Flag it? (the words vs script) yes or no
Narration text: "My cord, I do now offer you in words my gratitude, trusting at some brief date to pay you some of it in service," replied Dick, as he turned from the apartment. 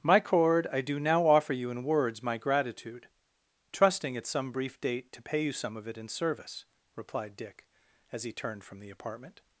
no